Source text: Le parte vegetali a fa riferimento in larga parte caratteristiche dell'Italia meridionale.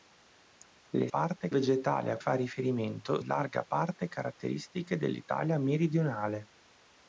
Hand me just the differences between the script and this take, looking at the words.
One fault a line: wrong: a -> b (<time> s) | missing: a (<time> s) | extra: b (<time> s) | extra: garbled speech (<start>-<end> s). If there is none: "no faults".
no faults